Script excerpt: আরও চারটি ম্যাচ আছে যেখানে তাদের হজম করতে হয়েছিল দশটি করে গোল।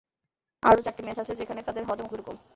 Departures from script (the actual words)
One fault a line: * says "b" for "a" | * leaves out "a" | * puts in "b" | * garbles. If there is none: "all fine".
* leaves out "করতে হয়েছিল দশটি"